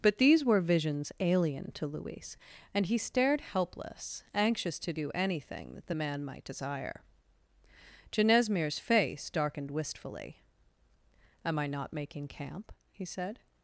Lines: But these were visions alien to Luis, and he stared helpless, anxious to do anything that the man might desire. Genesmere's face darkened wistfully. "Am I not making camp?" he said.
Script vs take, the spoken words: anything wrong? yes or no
no